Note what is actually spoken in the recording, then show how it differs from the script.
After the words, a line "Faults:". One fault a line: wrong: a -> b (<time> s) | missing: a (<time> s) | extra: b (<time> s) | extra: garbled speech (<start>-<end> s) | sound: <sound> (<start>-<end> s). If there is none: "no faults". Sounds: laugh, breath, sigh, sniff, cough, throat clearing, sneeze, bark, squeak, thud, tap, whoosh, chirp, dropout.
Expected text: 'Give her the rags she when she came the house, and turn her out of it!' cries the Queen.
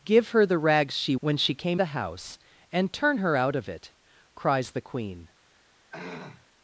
'Give her the rags she when she came the house, and turn her out of it!' cries the Queen.
Faults:
sound: throat clearing (5.9-6.5 s)